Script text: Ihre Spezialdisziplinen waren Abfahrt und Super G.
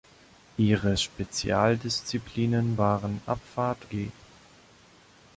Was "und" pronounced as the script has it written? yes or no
no